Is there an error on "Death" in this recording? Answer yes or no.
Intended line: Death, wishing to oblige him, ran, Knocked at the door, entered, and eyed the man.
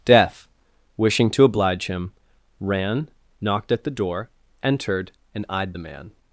no